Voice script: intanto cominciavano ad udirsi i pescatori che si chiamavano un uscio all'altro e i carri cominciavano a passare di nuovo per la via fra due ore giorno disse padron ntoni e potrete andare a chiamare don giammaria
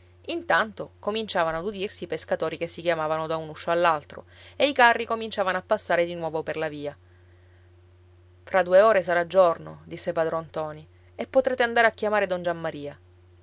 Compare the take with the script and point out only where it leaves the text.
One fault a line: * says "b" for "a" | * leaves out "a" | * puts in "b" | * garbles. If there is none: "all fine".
* puts in "da"
* puts in "sarà"